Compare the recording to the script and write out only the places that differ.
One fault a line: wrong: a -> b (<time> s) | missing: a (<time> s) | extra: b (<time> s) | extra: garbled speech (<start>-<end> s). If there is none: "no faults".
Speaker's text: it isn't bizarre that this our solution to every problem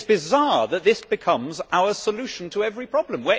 wrong: isn't -> is (0.0 s)
extra: becomes (1.0 s)